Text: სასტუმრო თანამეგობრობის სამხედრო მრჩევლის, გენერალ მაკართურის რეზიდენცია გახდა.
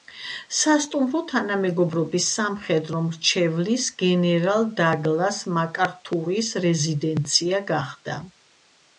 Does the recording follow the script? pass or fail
fail